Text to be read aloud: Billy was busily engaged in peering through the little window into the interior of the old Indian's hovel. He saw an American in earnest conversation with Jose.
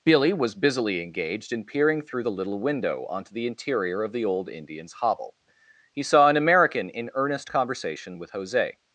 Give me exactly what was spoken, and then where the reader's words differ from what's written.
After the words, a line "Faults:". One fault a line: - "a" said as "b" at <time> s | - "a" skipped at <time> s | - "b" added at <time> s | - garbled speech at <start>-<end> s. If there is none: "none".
Billy was busily engaged in peering through the little window onto the interior of the old Indian's hovel. He saw an American in earnest conversation with Jose.
Faults:
- "into" said as "onto" at 3.1 s